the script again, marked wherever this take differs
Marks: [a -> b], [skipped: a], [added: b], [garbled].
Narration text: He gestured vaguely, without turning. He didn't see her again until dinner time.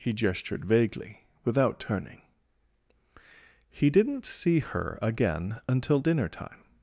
He gestured vaguely, without turning. He didn't see her again until dinner time.